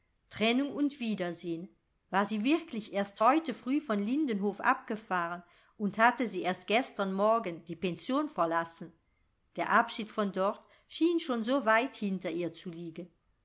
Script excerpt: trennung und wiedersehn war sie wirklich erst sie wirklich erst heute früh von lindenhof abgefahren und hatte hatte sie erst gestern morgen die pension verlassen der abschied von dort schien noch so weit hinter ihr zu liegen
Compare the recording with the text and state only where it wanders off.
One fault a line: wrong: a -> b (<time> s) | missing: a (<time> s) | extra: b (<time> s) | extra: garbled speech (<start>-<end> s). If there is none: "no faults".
missing: sie wirklich erst (3.2 s)
missing: hatte (6.3 s)
wrong: noch -> schon (11.2 s)